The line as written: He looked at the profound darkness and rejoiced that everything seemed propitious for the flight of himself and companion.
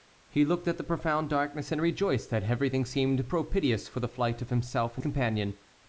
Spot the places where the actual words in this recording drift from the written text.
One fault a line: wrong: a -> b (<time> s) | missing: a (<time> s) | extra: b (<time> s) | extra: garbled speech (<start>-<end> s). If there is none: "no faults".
no faults